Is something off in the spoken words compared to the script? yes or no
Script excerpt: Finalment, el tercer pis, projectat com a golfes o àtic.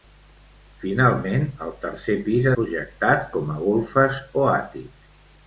no